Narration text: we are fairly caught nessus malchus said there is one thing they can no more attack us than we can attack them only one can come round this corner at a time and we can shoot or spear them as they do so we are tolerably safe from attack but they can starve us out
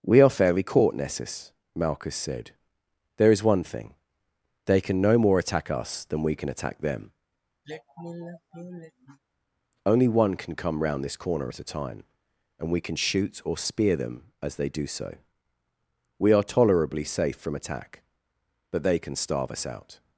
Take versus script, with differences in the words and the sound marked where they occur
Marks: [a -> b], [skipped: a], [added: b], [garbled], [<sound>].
we are fairly caught nessus malchus said there is one thing they can no more attack us than we can attack them [sigh] only one can come round this corner at a time and we can shoot or spear them as they do so we are tolerably safe from attack but they can starve us out